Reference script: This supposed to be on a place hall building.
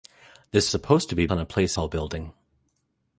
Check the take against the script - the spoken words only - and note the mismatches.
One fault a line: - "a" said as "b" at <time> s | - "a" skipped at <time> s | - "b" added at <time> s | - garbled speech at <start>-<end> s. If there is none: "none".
none